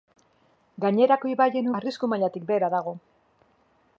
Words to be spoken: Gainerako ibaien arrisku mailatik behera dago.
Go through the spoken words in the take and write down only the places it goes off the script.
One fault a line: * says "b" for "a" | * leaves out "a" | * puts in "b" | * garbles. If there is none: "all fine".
all fine